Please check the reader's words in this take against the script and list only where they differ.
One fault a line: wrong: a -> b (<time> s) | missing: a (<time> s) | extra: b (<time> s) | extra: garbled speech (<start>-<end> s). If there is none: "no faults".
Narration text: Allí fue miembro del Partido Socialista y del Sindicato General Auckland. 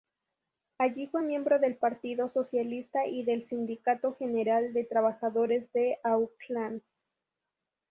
extra: de Trabajadores de (4.7 s)